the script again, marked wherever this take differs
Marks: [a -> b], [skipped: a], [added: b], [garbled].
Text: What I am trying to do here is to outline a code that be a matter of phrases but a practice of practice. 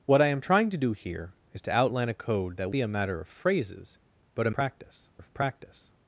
What I am trying to do here is to outline a code that be a matter of phrases but a practice of practice.